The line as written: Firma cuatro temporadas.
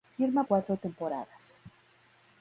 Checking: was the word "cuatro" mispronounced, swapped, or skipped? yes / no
no